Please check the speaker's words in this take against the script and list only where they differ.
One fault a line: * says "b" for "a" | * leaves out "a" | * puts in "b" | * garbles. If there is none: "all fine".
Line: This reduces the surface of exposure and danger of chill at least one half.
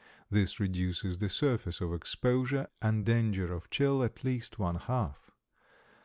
all fine